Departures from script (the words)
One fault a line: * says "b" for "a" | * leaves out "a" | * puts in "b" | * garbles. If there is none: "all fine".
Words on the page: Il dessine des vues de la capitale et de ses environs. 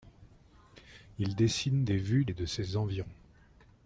* leaves out "de la capitale"